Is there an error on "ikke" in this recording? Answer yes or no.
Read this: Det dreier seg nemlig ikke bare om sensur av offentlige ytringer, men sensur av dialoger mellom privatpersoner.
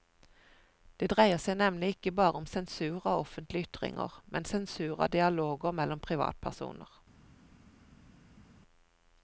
no